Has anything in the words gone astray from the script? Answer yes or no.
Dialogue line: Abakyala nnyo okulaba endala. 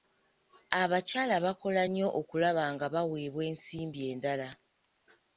yes